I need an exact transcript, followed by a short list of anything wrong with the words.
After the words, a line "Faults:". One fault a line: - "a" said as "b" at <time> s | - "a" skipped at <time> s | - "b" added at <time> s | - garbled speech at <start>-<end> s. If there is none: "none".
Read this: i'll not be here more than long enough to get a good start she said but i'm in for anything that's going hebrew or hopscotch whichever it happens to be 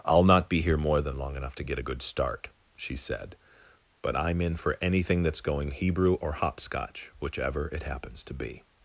i'll not be here more than long enough to get a good start she said but i'm in for anything that's going hebrew or hopscotch whichever it happens to be
Faults:
none